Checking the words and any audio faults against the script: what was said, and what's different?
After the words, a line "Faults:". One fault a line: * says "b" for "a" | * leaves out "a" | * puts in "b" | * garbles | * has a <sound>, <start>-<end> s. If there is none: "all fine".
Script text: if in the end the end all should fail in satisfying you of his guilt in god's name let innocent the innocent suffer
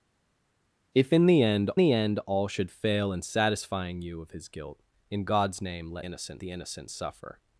if in the end the end all should fail in satisfying you of his guilt in god's name let innocent the innocent suffer
Faults:
all fine